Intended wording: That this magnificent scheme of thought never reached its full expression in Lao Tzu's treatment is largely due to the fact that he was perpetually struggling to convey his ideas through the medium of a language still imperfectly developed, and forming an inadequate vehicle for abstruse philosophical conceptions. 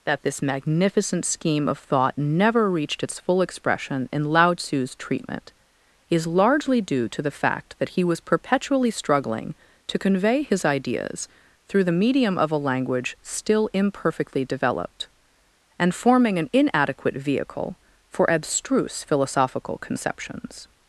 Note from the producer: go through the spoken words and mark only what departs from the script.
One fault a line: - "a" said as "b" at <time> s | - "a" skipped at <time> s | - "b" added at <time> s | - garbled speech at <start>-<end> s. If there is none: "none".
none